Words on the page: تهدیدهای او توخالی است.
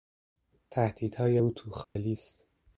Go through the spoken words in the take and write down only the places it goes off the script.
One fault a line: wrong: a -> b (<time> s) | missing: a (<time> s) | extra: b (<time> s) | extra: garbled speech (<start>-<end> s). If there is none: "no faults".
no faults